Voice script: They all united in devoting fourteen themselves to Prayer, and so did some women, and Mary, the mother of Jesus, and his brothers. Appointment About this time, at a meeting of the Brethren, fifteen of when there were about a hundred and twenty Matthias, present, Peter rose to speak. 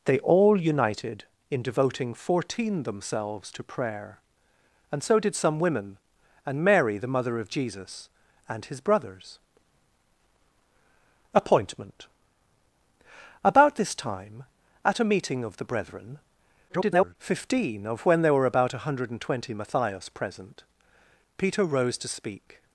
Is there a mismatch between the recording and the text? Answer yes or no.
yes